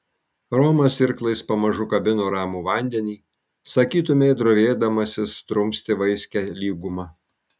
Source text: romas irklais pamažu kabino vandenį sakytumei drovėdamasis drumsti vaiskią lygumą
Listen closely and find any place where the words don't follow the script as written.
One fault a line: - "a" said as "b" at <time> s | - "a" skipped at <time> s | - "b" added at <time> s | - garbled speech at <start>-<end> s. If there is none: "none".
- "ramų" added at 2.3 s